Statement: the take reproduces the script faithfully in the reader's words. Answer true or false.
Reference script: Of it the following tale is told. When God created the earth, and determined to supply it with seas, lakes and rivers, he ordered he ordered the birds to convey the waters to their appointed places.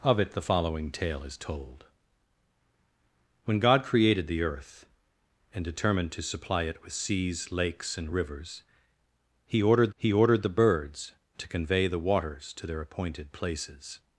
true